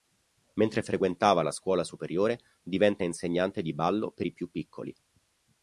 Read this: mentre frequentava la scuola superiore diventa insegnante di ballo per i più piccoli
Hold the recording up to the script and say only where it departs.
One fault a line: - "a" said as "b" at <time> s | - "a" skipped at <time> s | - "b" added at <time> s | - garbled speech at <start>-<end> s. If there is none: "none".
none